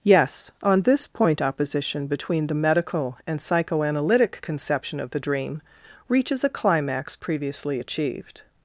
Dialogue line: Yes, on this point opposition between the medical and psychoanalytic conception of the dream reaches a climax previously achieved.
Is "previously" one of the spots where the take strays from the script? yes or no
no